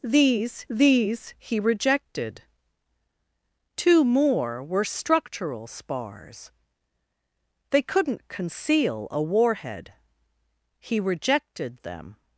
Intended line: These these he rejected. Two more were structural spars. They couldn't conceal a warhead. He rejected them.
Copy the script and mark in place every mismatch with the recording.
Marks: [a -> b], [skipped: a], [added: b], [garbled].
These these he rejected. Two more were structural spars. They couldn't conceal a warhead. He rejected them.